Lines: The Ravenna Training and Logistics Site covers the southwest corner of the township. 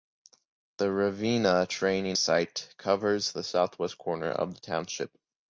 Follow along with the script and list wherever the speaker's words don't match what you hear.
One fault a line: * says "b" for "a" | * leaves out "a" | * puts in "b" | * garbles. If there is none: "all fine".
* leaves out "and Logistics"